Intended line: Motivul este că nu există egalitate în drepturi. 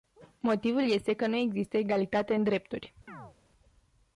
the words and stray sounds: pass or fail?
fail